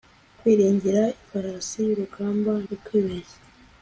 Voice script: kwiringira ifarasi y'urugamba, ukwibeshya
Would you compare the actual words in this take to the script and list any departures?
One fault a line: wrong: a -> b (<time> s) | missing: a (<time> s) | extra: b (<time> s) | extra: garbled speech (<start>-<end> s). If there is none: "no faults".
no faults